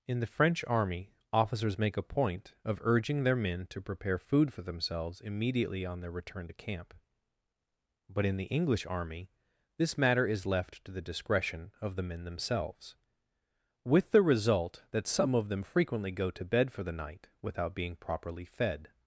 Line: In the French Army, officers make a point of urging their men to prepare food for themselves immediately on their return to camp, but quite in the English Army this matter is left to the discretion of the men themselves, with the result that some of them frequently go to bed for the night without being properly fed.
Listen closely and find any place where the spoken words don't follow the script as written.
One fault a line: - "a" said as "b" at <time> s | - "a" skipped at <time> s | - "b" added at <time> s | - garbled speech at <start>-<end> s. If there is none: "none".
- "quite" skipped at 8.2 s